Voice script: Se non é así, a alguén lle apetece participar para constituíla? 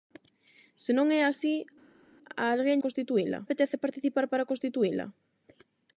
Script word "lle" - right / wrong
wrong